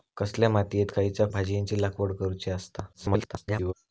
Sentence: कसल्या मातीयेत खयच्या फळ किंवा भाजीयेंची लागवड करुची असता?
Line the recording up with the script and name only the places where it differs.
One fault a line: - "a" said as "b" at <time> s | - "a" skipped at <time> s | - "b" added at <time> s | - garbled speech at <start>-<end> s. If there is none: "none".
- "फळ किंवा" skipped at 1.3 s
- garbled speech at 2.9-3.7 s